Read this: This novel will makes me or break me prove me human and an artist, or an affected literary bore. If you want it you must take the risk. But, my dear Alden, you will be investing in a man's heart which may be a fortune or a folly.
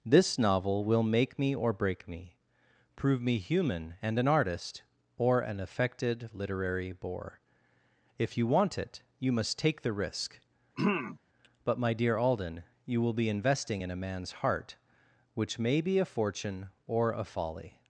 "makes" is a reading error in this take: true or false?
true